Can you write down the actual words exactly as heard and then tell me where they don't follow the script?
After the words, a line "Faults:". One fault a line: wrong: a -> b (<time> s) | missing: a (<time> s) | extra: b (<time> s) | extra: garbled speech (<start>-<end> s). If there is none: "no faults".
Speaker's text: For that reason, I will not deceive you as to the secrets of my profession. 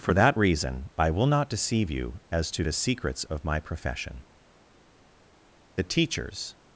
For that reason, I will not deceive you as to the secrets of my profession. The teachers
Faults:
extra: The teachers (5.7 s)